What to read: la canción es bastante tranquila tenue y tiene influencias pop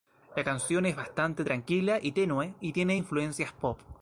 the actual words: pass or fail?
fail